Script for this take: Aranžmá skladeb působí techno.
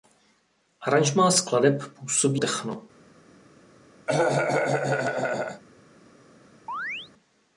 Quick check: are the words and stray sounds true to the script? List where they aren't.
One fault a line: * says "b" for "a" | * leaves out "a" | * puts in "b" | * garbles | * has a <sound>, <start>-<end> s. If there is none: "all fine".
* has a cough, 4.1-5.6 s
* has a chirp, 6.7-7.1 s